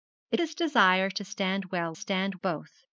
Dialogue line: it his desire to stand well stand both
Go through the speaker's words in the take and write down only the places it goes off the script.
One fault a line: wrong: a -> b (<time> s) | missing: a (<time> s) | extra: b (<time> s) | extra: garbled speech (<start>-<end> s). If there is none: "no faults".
no faults